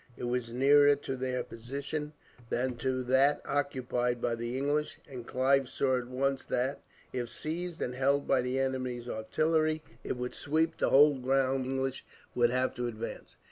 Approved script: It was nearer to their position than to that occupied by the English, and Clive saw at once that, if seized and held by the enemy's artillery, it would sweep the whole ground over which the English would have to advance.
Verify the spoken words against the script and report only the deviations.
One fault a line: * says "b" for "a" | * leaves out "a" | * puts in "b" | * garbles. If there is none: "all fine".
* leaves out "over which the"